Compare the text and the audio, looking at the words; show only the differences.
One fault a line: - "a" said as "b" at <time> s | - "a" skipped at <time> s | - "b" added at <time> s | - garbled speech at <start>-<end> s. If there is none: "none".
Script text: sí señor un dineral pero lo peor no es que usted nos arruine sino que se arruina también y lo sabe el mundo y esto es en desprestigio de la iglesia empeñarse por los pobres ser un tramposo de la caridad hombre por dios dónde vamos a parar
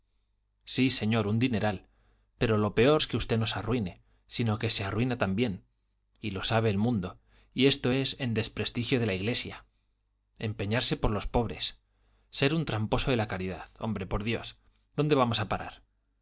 - "no" skipped at 3.0 s